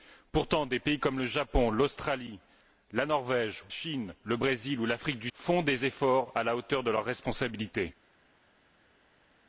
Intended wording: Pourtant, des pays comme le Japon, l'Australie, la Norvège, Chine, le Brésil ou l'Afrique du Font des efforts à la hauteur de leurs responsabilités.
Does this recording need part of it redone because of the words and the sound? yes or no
no